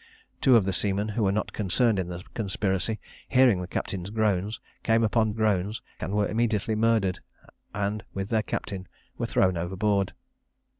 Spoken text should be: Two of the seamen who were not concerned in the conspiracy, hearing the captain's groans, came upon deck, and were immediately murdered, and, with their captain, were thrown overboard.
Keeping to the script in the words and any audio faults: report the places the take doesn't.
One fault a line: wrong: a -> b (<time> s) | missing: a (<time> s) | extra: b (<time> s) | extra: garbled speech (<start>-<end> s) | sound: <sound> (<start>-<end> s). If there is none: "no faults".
wrong: deck -> groans (5.3 s)